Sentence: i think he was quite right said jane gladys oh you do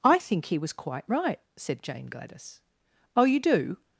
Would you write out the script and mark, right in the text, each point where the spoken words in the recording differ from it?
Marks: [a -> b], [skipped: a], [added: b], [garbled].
i think he was quite right said jane gladys oh you do